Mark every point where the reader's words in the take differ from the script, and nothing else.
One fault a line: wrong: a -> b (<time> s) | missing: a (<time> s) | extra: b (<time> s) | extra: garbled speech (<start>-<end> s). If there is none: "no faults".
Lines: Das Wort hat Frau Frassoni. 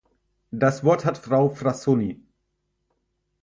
no faults